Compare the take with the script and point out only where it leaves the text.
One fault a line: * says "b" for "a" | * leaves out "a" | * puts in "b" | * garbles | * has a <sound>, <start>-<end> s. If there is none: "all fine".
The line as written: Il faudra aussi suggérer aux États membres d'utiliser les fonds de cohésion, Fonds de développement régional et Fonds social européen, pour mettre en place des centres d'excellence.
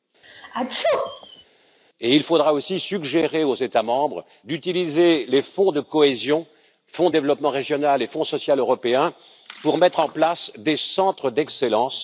* has a sneeze, 0.2-1.5 s